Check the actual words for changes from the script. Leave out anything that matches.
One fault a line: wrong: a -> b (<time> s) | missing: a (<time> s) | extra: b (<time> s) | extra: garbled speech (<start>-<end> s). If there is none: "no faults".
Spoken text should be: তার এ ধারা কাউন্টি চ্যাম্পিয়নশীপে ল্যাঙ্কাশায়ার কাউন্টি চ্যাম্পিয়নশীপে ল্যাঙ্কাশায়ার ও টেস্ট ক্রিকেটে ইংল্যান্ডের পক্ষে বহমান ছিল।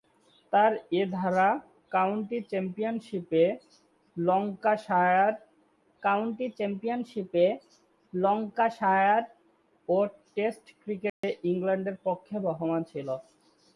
no faults